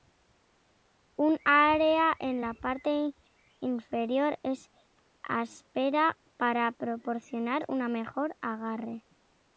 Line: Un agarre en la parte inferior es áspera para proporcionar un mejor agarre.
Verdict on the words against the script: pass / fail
fail